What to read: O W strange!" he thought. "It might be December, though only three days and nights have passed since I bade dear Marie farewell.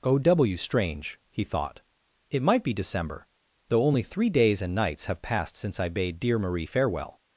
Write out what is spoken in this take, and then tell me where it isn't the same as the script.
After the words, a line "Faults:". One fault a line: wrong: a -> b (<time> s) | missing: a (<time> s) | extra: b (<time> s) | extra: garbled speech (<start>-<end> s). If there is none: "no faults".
O W strange!" he thought. "It might be December, though only three days and nights have passed since I bade dear Marie farewell.
Faults:
no faults